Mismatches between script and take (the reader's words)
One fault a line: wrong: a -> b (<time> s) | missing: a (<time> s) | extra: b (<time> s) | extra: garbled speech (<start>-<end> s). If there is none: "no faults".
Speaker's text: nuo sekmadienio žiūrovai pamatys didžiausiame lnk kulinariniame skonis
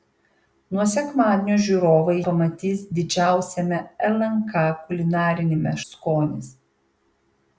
no faults